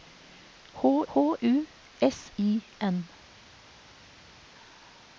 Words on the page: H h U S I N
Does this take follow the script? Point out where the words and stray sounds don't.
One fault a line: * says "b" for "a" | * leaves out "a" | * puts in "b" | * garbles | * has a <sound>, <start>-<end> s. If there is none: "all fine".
all fine